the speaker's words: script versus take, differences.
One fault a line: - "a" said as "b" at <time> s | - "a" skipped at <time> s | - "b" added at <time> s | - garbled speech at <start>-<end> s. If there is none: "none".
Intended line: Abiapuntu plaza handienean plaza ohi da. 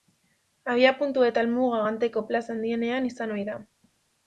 - "eta helmuga Ganteko" added at 1.3 s
- "plaza" said as "izan" at 3.1 s